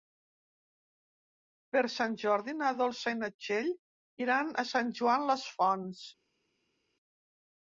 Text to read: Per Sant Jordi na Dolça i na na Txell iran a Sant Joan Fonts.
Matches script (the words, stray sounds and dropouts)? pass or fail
fail